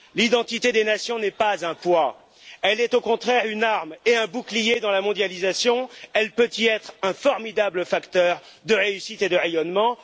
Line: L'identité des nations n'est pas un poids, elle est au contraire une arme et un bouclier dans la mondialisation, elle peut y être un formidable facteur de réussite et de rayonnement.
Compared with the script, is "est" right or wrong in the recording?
right